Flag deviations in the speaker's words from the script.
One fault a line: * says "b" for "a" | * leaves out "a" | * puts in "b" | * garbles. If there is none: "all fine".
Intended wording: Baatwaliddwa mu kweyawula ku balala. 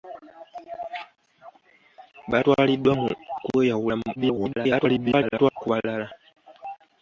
* garbles